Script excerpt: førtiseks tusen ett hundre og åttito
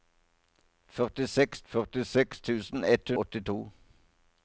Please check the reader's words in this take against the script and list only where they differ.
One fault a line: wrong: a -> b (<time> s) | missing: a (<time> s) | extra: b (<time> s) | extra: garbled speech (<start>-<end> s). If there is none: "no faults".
extra: førtiseks (1.7 s)
missing: hundre og (3.1 s)